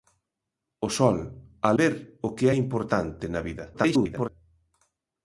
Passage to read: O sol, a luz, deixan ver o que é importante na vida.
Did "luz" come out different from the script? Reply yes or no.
yes